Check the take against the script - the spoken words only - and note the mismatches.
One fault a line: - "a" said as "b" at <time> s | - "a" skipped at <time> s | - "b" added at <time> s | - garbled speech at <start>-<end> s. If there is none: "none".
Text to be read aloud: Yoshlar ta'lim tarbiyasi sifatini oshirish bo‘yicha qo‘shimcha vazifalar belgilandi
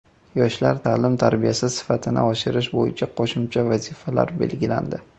none